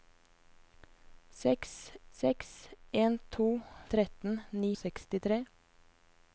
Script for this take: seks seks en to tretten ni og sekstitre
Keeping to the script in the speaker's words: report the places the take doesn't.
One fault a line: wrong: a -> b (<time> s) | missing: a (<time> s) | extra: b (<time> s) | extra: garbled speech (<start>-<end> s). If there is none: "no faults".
no faults